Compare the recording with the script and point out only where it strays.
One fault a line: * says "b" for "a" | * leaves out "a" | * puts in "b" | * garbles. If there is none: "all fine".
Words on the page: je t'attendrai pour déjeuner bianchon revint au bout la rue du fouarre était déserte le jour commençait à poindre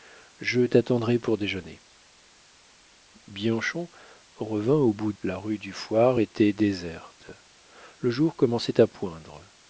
all fine